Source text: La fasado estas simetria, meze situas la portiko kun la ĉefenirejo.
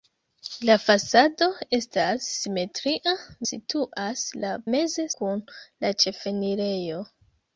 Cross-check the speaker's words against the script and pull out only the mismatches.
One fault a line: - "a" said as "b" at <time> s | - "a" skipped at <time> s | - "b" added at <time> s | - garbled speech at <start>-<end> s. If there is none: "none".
- "meze" skipped at 3.1 s
- "portiko" said as "meze" at 4.8 s